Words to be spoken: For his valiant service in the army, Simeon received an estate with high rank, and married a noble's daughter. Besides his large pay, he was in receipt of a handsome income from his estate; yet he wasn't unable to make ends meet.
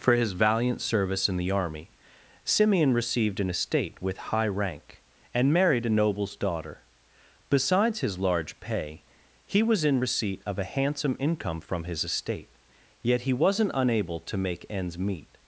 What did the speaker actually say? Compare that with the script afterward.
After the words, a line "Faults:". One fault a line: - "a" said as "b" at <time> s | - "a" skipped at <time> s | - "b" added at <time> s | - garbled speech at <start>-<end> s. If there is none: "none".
For his valiant service in the army, Simeon received an estate with high rank, and married a noble's daughter. Besides his large pay, he was in receipt of a handsome income from his estate; yet he wasn't unable to make ends meet.
Faults:
none